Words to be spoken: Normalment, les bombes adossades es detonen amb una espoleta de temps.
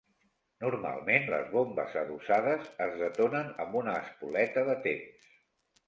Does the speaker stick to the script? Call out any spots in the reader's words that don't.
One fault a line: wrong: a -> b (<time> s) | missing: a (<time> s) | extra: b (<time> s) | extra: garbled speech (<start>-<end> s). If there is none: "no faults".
no faults